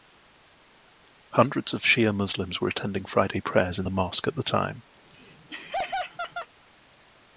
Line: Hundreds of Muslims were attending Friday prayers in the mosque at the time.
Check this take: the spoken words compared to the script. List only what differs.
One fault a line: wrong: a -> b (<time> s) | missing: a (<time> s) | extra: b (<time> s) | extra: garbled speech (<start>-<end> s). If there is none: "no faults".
extra: Shia (1.8 s)